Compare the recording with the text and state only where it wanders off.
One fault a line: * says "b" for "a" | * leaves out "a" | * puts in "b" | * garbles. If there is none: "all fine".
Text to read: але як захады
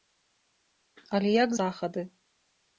all fine